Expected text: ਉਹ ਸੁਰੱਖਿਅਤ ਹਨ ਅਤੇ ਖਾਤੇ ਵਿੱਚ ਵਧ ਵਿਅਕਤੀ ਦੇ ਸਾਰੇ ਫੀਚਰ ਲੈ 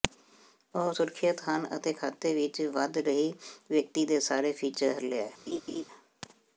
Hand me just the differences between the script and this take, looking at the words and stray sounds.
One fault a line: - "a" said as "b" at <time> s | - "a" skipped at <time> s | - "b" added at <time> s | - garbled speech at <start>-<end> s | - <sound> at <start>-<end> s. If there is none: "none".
- "ਰਹੀ" added at 3.0 s
- laugh at 5.5-5.8 s